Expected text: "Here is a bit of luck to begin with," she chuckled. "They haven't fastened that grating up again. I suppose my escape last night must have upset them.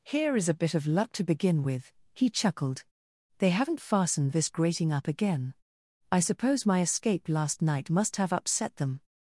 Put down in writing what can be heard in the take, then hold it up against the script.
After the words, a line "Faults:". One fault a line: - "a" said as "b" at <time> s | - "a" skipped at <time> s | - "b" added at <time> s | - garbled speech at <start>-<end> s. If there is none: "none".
"Here is a bit of luck to begin with," he chuckled. "They haven't fastened this grating up again. I suppose my escape last night must have upset them.
Faults:
- "she" said as "he" at 2.1 s
- "that" said as "this" at 4.3 s